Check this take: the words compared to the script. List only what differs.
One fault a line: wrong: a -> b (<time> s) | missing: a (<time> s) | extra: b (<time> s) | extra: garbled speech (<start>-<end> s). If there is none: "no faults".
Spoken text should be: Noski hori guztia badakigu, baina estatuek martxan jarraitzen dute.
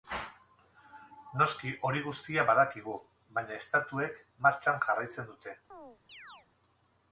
no faults